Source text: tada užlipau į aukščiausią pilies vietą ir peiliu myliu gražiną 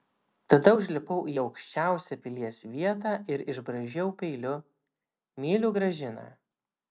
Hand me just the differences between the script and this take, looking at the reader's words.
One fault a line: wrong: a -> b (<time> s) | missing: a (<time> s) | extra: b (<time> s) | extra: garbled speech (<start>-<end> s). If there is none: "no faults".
extra: išbraižiau (3.5 s)